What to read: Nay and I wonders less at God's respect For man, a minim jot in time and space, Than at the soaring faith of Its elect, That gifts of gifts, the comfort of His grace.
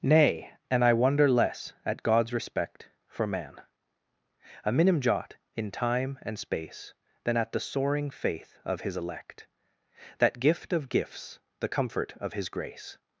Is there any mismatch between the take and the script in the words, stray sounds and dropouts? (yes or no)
yes